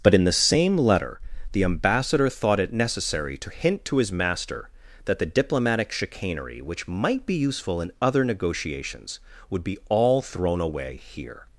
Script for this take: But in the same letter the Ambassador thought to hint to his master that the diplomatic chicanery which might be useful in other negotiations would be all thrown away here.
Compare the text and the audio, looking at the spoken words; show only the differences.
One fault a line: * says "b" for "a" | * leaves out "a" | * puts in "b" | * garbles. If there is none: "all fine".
* puts in "it necessary"